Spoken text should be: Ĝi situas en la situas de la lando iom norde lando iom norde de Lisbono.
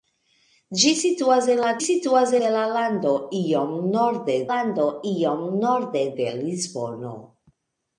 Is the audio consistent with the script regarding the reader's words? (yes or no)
yes